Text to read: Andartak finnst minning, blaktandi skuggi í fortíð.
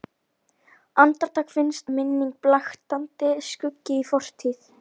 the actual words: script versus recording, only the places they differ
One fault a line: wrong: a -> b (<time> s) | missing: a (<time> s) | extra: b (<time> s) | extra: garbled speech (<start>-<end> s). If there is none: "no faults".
no faults